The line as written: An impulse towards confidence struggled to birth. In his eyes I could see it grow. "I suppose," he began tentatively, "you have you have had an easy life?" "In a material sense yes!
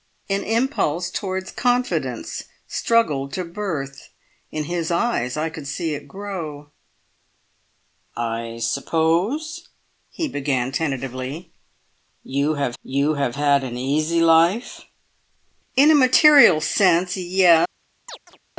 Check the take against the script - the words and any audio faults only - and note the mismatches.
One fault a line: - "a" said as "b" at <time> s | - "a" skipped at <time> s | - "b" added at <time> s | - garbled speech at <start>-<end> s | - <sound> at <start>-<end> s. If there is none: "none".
- chirp at 18.1-18.4 s